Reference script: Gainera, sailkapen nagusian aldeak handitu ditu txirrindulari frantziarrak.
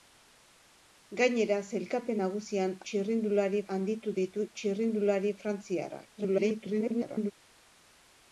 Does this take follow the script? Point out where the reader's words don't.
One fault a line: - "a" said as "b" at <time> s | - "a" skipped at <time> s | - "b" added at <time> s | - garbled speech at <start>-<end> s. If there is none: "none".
- "aldeak" said as "txirrindulari" at 2.9 s
- garbled speech at 6.2-7.3 s